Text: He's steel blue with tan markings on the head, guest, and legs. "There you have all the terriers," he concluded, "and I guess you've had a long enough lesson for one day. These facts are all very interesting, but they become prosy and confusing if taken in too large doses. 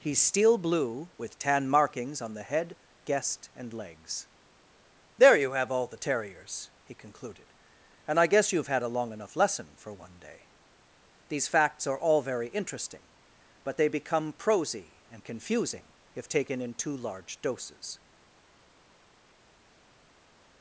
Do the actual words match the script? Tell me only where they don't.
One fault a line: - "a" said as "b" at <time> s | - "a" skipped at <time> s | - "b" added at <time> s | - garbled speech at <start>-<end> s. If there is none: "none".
none